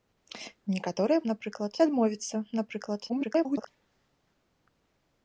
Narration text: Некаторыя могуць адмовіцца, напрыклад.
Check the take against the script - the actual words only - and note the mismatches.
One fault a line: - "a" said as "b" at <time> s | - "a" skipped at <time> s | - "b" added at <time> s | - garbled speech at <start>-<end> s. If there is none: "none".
- "могуць" said as "напрыклад" at 1.3 s
- garbled speech at 3.1-3.7 s